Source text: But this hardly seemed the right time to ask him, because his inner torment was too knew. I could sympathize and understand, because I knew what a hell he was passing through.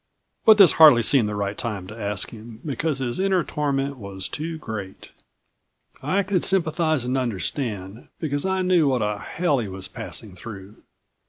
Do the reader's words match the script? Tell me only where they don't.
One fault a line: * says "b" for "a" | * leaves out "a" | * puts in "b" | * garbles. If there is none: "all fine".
* says "great" for "knew"